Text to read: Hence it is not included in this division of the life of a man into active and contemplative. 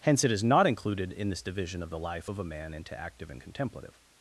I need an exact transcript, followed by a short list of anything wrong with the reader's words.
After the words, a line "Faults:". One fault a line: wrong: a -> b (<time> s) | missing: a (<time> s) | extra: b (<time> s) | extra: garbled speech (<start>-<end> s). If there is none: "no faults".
Hence it is not included in this division of the life of a man into active and contemplative.
Faults:
no faults